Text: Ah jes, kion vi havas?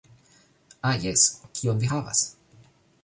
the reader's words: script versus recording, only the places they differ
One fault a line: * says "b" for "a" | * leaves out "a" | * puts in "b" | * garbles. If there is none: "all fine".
all fine